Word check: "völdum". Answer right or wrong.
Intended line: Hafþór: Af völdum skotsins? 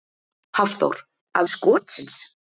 wrong